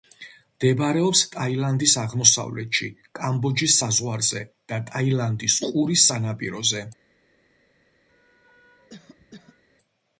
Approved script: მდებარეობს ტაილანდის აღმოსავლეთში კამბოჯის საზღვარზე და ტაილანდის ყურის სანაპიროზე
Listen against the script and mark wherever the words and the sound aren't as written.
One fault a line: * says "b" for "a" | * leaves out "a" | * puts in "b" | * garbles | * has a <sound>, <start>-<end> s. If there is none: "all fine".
* has a cough, 8.1-9.6 s